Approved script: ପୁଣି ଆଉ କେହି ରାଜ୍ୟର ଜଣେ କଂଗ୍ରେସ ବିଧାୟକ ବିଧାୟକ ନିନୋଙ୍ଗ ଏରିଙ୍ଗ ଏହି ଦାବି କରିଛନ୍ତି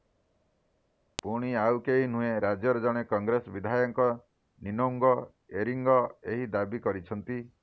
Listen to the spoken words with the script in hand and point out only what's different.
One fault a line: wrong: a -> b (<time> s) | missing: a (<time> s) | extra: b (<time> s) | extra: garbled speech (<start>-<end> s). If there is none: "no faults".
extra: ନୁହେଁ (2.1 s)
missing: ବିଧାୟକ (4.1 s)